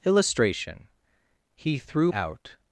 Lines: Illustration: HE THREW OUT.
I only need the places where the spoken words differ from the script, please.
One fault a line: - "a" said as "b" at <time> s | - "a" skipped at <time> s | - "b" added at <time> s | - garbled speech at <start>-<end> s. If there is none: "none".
none